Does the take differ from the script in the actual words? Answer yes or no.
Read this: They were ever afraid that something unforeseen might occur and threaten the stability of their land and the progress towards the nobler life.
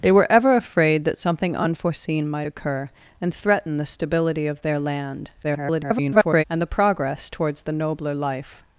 yes